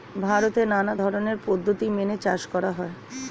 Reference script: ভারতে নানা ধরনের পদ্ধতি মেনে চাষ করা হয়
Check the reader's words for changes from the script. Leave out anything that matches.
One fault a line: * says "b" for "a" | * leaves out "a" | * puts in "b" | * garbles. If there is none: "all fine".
all fine